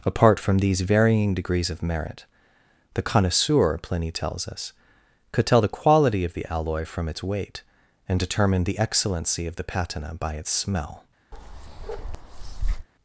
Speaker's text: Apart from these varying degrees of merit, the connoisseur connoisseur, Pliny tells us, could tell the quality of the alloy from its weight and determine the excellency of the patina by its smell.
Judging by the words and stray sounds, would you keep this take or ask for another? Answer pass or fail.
fail